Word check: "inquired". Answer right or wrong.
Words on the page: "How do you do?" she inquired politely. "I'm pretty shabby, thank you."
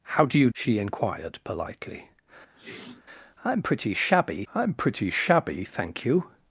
right